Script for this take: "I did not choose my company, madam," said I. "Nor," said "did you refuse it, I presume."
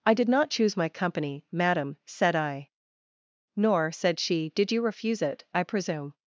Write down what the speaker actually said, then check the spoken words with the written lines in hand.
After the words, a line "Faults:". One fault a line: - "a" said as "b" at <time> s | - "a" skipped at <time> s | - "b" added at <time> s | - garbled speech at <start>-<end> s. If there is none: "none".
"I did not choose my company, madam," said I. "Nor," said she, "did you refuse it, I presume."
Faults:
- "she" added at 4.2 s